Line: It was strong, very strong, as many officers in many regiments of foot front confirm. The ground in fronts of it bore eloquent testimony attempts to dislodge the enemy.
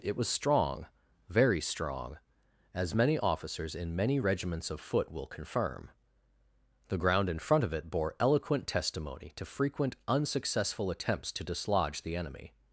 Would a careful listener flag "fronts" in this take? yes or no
yes